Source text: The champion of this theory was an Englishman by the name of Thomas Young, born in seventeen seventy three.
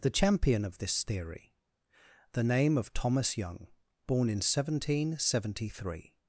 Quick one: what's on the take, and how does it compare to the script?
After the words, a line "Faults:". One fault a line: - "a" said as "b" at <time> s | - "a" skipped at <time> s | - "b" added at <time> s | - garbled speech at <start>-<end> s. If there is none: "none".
The champion of this theory the name of Thomas Young, born in seventeen seventy three.
Faults:
- "was an Englishman by" skipped at 1.5 s